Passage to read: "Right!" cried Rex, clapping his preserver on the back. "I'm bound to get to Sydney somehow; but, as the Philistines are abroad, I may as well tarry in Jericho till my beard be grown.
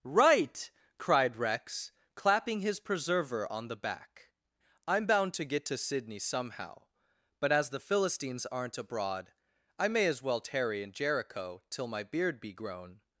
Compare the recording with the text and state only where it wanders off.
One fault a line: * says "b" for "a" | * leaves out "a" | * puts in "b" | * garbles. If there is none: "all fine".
* says "aren't" for "are"